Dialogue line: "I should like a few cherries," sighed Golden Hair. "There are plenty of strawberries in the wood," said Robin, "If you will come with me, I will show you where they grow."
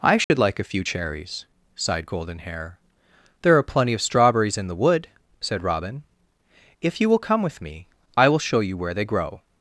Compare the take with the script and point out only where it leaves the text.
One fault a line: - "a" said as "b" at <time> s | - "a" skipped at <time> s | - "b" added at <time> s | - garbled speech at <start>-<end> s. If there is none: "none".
none